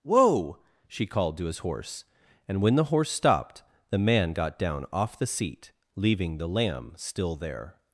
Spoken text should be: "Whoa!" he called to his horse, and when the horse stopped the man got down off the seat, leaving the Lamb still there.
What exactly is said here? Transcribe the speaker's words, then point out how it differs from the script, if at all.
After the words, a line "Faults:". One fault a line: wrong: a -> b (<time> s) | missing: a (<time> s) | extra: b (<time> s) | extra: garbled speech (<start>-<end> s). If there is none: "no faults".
"Whoa!" she called to his horse, and when the horse stopped the man got down off the seat, leaving the Lamb still there.
Faults:
wrong: he -> she (0.9 s)